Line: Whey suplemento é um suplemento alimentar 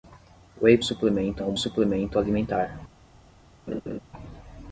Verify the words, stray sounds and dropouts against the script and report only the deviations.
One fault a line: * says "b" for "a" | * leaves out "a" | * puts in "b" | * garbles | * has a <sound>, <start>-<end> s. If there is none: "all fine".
* has a laugh, 3.7-4.0 s